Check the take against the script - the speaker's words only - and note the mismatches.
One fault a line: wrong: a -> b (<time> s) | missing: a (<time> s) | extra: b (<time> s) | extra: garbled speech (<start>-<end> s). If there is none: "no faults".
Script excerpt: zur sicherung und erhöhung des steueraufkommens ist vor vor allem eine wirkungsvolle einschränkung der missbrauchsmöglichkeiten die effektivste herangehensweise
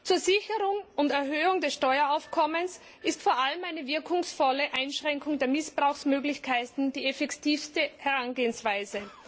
missing: vor (3.4 s)